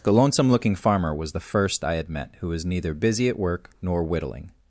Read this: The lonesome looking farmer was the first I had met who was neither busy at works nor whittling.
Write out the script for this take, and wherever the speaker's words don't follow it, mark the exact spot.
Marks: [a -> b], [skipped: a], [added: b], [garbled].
The lonesome looking farmer was the first I had met who was neither busy at [works -> work] nor whittling.